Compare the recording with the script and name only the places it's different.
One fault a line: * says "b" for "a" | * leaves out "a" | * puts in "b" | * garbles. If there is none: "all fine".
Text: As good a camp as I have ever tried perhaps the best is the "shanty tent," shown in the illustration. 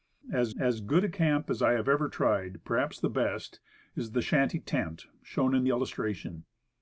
* puts in "as"
* leaves out "the"